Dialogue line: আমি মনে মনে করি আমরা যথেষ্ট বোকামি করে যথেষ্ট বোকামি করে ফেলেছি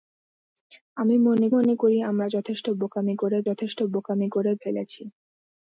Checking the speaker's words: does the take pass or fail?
pass